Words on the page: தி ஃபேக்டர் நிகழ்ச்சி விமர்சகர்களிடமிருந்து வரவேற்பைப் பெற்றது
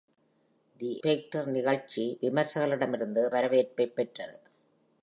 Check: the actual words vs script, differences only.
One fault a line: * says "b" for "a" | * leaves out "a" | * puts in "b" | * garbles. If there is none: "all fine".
all fine